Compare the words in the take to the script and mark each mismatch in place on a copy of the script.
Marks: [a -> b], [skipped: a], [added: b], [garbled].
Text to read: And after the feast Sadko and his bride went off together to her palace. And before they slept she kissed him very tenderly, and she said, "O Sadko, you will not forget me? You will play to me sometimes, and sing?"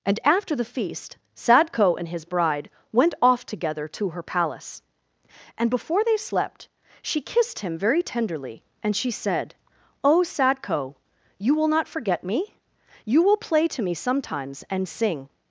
And after the feast Sadko and his bride went off together to her palace. And before they slept she kissed him very tenderly, and she said, "O Sadko, you will not forget me? You will play to me sometimes, and sing?"